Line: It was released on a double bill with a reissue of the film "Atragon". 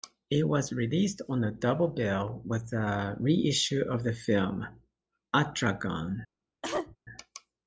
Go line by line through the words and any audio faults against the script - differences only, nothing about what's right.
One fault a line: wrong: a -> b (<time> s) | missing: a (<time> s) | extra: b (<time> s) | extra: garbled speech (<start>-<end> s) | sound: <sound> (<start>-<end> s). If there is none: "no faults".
sound: cough (6.6-7.0 s)